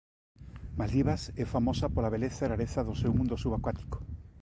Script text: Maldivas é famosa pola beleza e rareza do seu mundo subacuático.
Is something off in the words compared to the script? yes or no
no